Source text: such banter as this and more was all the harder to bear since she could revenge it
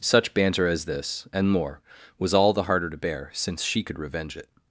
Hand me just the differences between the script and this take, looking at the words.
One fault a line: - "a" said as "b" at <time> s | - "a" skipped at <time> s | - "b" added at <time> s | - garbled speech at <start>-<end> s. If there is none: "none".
none